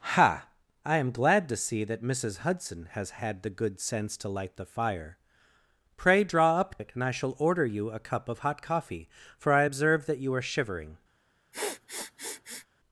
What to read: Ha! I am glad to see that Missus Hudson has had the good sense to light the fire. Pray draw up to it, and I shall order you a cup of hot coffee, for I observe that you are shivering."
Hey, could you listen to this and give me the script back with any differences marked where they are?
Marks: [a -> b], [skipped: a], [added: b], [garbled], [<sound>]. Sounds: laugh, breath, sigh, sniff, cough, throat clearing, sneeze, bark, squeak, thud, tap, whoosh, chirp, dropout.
Ha! I am glad to see that Missus Hudson has had the good sense to light the fire. Pray draw up [skipped: to] it, and I shall order you a cup of hot coffee, for I observe that you are shivering." [sniff]